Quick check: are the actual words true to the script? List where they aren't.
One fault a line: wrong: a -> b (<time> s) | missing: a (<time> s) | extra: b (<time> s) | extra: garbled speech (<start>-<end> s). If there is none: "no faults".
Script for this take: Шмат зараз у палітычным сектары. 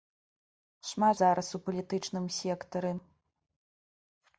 no faults